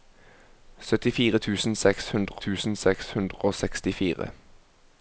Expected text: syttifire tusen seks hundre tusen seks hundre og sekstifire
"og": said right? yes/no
yes